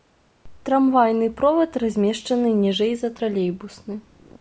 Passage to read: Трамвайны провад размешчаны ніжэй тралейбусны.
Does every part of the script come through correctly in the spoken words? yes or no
no